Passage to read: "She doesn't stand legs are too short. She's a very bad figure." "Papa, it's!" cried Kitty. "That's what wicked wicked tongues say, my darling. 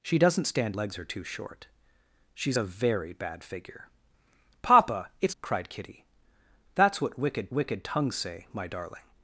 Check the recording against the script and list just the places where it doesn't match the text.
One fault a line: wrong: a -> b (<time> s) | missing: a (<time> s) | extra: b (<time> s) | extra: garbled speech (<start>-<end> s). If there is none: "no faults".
no faults